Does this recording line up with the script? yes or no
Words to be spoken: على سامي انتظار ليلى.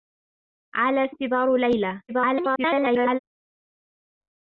no